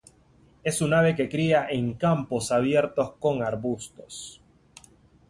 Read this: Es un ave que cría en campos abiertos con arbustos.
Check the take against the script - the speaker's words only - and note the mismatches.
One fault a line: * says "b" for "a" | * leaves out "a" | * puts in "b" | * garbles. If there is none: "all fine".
all fine